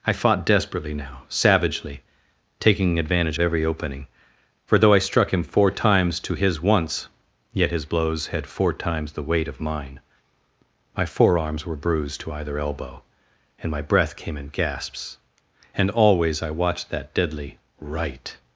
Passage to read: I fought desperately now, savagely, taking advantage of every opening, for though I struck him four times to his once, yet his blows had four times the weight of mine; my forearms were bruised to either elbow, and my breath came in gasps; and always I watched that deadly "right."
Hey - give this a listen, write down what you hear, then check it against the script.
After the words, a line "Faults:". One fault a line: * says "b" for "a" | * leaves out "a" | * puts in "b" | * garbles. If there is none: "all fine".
I fought desperately now, savagely, taking advantage every opening, for though I struck him four times to his once, yet his blows had four times the weight of mine; my forearms were bruised to either elbow, and my breath came in gasps; and always I watched that deadly "right."
Faults:
* leaves out "of"